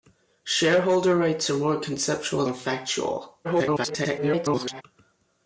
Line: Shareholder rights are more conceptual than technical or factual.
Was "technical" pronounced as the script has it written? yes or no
no